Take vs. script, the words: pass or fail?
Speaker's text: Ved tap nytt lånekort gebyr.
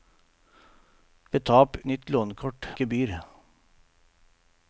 pass